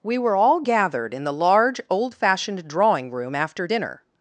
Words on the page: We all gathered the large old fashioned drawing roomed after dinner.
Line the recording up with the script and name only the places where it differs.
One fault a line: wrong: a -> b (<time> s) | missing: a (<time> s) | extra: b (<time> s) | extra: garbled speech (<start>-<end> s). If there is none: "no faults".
extra: were (0.2 s)
extra: in (1.1 s)
wrong: roomed -> room (3.1 s)